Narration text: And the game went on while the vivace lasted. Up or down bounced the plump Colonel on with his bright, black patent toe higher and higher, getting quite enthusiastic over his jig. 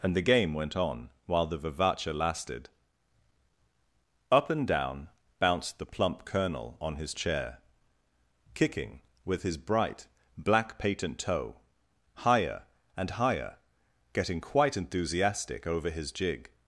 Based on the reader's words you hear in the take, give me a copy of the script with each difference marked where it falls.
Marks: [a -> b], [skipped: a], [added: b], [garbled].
And the game went on while the vivace lasted. Up [or -> and] down bounced the plump Colonel on [added: his chair kicking] with his bright, black patent toe higher and higher, getting quite enthusiastic over his jig.